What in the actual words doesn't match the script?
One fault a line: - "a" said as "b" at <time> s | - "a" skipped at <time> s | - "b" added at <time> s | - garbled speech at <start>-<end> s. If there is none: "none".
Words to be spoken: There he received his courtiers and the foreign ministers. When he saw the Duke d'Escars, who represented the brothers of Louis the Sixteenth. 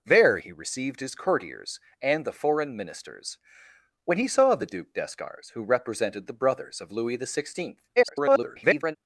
- garbled speech at 8.0-9.0 s